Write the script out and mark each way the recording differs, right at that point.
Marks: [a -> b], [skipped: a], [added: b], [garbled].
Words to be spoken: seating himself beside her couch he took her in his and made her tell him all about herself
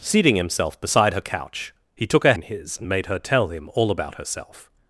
seating himself beside her couch he took her in his and made her tell him all about herself